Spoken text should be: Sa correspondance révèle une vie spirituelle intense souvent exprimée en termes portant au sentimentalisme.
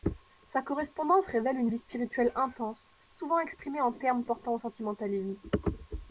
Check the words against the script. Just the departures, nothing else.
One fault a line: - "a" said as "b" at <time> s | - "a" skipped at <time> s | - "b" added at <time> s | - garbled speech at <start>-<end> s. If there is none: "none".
none